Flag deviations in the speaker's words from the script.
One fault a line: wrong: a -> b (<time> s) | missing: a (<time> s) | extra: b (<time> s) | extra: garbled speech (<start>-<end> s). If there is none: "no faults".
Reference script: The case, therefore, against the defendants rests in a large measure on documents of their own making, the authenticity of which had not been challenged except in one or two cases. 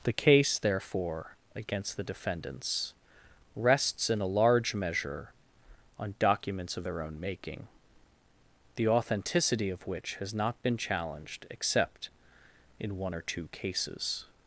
wrong: had -> has (10.2 s)